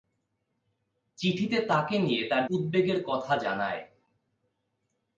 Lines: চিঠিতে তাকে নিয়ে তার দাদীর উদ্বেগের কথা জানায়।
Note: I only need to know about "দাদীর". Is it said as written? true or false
false